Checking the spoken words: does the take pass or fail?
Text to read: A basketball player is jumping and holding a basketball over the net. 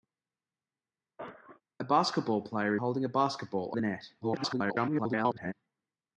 fail